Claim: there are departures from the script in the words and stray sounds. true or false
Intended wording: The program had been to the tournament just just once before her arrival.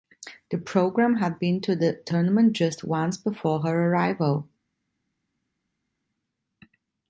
true